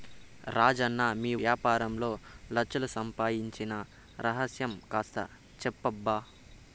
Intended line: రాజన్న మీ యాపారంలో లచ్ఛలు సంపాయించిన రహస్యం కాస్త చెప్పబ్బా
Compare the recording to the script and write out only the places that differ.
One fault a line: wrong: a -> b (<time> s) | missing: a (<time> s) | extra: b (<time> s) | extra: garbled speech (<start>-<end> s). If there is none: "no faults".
no faults